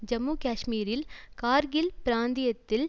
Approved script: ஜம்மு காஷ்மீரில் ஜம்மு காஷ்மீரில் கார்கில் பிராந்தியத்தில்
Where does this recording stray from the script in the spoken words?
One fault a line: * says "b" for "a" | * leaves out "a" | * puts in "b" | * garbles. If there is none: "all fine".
* leaves out "ஜம்மு காஷ்மீரில்"